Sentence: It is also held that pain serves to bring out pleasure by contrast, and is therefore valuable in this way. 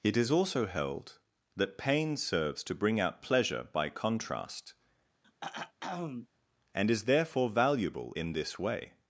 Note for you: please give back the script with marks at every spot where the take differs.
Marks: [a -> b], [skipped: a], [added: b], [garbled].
It is also held that pain serves to bring out pleasure by contrast, and is therefore valuable in this way.